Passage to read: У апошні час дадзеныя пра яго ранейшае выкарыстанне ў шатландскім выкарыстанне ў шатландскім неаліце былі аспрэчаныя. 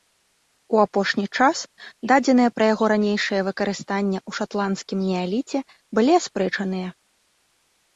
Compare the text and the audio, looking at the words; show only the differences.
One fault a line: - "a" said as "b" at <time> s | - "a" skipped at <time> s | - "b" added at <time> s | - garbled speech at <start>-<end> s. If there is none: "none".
- "выкарыстанне ў шатландскім" skipped at 5.0 s